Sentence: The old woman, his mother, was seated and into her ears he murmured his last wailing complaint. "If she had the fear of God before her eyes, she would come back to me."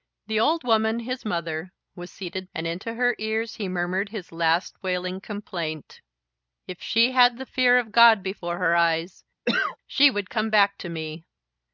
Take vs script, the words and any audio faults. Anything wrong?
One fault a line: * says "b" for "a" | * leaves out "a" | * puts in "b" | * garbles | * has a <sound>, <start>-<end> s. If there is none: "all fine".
* has a cough, 9.5-9.8 s